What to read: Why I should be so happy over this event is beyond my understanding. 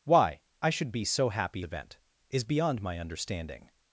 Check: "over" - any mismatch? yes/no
yes